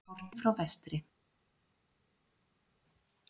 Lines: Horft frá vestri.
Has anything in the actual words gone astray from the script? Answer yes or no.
no